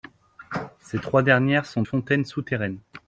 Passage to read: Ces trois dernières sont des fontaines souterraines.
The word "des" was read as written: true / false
false